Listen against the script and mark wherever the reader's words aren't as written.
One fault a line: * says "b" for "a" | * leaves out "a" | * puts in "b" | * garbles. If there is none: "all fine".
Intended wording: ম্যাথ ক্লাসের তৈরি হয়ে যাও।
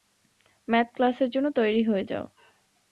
* puts in "জন্য"